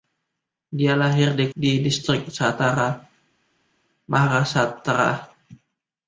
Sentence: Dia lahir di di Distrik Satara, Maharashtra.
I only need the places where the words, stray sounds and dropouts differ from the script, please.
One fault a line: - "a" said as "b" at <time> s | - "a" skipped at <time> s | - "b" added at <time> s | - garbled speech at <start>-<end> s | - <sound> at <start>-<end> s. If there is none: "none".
none